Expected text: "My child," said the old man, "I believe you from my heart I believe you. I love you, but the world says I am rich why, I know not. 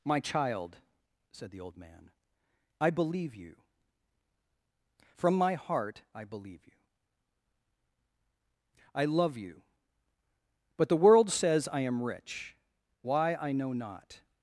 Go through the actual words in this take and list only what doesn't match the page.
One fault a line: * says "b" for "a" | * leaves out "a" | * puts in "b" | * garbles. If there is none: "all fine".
all fine